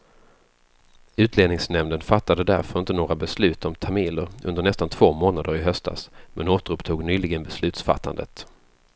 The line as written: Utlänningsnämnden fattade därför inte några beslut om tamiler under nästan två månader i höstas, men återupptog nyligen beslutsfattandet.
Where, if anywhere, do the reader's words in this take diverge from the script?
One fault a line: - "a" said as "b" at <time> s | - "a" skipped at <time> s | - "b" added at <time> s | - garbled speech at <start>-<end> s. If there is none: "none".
none